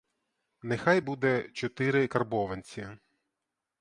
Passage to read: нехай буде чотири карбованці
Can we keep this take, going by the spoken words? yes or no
yes